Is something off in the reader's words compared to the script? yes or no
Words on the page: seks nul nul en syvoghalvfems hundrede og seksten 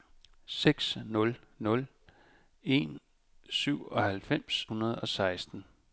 no